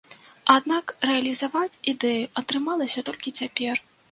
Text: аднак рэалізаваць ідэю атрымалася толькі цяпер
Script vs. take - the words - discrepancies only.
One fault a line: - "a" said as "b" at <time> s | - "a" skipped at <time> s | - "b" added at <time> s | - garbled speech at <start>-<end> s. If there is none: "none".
none